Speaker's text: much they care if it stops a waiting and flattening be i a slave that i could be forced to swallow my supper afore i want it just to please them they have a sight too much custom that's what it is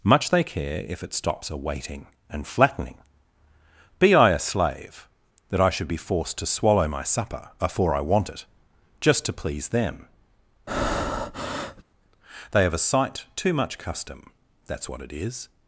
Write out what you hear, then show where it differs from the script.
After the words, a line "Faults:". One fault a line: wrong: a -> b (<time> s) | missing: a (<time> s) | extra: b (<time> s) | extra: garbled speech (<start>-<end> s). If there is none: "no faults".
much they care if it stops a waiting and flattening be i a slave that i should be forced to swallow my supper afore i want it just to please them they have a sight too much custom that's what it is
Faults:
wrong: could -> should (5.7 s)